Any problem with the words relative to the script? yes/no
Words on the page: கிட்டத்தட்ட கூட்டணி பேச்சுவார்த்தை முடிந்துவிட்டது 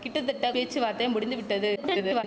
yes